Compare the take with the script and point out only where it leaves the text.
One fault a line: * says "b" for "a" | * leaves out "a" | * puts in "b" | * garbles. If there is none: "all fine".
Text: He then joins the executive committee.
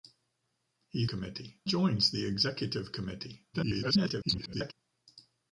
* says "committee" for "then"
* garbles